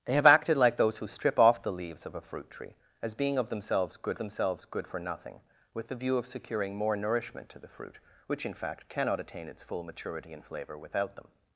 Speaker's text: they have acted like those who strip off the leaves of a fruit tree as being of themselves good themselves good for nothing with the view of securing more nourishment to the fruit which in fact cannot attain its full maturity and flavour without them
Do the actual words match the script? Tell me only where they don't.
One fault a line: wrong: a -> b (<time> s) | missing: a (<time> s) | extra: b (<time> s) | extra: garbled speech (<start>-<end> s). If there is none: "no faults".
no faults